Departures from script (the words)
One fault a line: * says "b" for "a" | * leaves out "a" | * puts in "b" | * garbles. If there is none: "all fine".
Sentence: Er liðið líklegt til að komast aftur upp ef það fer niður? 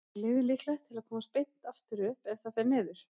* puts in "beint"